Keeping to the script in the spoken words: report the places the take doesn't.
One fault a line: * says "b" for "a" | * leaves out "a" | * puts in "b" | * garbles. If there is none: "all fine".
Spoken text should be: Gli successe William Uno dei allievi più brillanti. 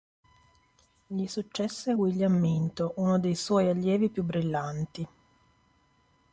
* puts in "Minto"
* puts in "suoi"